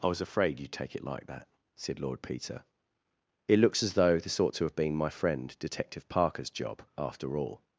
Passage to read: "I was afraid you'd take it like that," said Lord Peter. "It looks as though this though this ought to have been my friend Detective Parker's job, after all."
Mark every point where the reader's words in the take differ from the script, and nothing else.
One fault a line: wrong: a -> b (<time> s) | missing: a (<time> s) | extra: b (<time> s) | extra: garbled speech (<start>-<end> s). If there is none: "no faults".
missing: though this (4.4 s)